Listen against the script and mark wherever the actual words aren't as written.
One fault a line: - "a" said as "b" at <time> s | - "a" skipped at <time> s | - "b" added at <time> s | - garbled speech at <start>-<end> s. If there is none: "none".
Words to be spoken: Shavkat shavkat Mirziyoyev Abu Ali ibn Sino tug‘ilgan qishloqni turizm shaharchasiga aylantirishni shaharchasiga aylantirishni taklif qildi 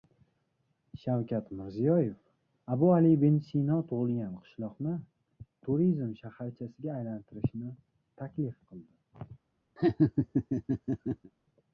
- "shavkat" skipped at 1.5 s
- "shaharchasiga aylantirishni" skipped at 7.7 s